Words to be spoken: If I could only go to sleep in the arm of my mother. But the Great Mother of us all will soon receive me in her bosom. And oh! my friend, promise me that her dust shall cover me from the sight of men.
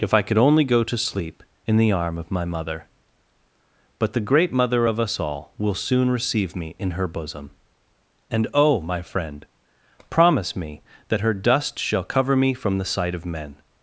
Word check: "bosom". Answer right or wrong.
right